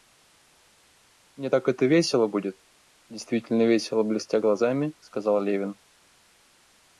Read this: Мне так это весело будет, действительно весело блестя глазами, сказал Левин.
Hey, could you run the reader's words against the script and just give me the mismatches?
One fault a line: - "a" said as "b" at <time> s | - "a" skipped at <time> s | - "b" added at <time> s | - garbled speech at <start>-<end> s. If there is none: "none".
none